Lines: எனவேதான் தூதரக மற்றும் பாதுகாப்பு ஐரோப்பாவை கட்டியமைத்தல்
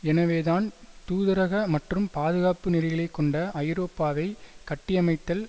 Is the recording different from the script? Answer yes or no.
yes